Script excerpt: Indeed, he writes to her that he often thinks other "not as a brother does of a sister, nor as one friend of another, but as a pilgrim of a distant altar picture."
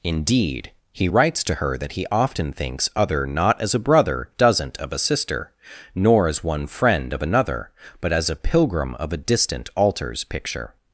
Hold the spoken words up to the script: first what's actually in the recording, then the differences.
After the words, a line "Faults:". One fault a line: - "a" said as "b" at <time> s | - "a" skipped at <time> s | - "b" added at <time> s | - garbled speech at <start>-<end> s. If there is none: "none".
Indeed, he writes to her that he often thinks other "not as a brother doesn't of a sister, nor as one friend of another, but as a pilgrim of a distant altars picture."
Faults:
- "does" said as "doesn't" at 4.4 s
- "altar" said as "altars" at 9.8 s